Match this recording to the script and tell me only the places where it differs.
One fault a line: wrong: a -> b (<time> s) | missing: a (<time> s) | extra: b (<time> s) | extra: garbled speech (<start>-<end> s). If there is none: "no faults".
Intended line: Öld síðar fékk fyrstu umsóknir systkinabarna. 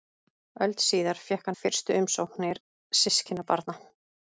no faults